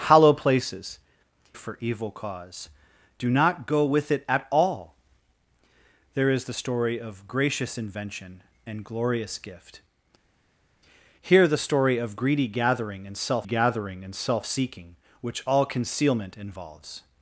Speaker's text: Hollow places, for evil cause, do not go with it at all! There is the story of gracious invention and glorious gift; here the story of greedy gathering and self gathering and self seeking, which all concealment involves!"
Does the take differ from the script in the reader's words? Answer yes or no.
no